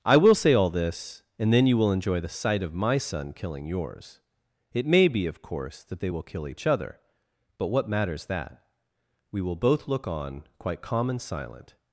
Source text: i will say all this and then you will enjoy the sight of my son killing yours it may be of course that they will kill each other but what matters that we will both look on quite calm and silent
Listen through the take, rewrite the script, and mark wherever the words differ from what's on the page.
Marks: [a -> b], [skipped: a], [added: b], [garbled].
i will say all this and then you will enjoy the sight of my son killing yours it may be of course that they will kill each other but what matters that we will both look on quite calm and silent